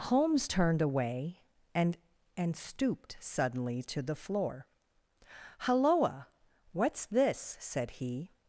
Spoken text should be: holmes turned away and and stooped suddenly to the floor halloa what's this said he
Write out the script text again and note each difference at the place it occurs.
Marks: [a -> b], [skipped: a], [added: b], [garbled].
holmes turned away and and stooped suddenly to the floor halloa what's this said he